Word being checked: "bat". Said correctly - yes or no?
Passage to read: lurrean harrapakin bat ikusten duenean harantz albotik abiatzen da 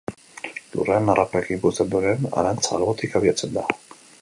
no